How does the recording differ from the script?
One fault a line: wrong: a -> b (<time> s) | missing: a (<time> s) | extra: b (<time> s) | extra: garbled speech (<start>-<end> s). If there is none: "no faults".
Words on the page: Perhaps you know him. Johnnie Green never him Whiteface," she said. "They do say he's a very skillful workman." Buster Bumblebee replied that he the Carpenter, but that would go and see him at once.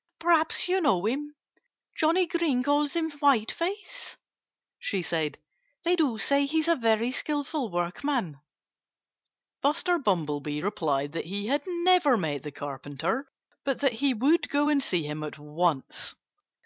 wrong: never -> calls (2.6 s)
extra: had never met (11.5 s)
extra: he (13.9 s)